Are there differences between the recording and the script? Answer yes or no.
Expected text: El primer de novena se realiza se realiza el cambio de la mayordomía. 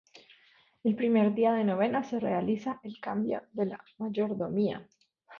yes